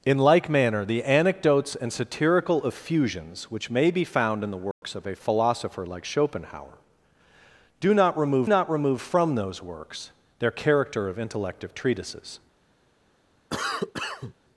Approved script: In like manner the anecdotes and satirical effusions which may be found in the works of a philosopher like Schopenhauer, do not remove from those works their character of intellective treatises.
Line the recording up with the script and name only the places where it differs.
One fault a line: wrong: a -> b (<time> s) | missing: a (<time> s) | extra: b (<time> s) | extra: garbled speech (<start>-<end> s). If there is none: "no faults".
extra: not remove (8.5 s)